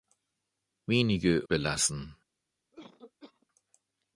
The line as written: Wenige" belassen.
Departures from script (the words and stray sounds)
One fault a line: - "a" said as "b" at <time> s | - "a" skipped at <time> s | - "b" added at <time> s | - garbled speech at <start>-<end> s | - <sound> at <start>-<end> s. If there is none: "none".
- cough at 2.7-3.5 s